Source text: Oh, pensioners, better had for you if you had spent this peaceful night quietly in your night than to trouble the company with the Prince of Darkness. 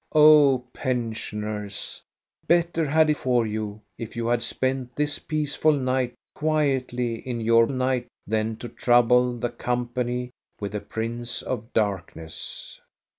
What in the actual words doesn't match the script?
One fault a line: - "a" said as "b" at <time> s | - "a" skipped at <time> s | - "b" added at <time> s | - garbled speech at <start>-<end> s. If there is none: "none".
none